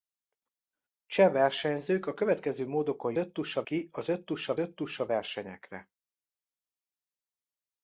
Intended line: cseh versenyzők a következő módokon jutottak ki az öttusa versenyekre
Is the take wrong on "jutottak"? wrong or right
wrong